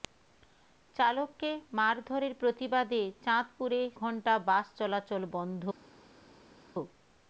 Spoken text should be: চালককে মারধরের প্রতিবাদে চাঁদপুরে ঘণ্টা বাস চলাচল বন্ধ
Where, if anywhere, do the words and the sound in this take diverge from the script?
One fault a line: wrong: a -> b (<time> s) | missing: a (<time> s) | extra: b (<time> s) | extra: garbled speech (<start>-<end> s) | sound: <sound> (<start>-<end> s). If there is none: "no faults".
no faults